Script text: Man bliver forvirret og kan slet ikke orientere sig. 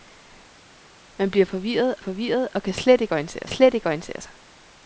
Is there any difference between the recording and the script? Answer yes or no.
yes